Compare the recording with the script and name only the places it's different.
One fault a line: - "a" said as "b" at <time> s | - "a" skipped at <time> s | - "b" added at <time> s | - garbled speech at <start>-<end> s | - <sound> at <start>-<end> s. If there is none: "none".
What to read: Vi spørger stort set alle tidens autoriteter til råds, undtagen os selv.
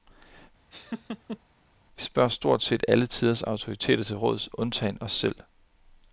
- laugh at 0.7-1.4 s